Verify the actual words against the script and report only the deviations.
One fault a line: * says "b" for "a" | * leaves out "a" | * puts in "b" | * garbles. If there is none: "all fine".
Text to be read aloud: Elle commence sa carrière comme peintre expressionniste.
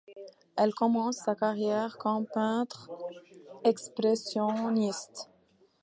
all fine